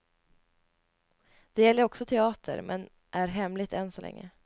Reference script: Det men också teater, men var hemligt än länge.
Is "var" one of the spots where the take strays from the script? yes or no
yes